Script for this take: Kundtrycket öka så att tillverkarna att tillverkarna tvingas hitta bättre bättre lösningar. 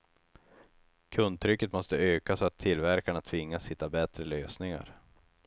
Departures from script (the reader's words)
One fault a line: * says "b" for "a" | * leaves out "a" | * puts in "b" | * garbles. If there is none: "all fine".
* puts in "måste"
* leaves out "att tillverkarna"
* leaves out "bättre"